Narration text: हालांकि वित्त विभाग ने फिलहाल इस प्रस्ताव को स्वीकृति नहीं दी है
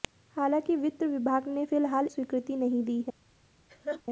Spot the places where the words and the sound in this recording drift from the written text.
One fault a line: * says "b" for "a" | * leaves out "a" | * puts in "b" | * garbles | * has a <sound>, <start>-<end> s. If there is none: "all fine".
* leaves out "इस प्रस्ताव को"
* has a laugh, 3.7-4.0 s